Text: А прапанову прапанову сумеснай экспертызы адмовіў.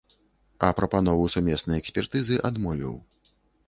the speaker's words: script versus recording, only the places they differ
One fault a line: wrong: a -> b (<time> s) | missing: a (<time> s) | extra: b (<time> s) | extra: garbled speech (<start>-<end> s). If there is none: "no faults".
missing: прапанову (1.3 s)